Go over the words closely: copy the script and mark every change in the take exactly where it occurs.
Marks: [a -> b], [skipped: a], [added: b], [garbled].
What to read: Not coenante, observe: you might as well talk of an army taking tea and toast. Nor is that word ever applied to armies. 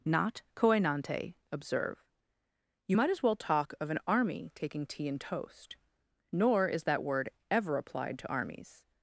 Not coenante, observe: you might as well talk of an army taking tea and toast. Nor is that word ever applied to armies.